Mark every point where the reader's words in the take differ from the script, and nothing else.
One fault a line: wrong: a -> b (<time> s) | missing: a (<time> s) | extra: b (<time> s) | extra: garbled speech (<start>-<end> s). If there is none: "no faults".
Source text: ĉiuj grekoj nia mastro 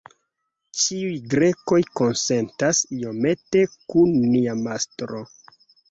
extra: konsentas iomete kun (2.0 s)